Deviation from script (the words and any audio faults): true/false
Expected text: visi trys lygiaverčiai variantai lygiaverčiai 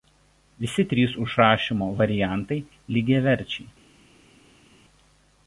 true